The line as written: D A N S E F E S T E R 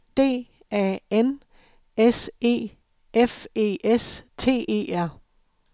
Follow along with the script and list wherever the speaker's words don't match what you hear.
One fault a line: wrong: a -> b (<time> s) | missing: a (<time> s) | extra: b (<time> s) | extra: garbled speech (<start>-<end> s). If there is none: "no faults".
no faults